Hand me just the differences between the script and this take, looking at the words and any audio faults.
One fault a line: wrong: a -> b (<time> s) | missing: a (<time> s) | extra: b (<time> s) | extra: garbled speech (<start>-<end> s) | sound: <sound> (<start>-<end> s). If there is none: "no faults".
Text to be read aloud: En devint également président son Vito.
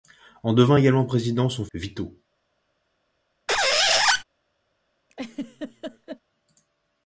sound: squeak (3.5-4.2 s)
sound: laugh (5.1-6.2 s)